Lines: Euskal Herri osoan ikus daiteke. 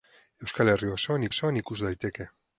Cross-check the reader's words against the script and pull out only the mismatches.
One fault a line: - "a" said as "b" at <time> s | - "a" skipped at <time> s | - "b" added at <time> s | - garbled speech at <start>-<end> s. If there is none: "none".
- "osoan" added at 1.3 s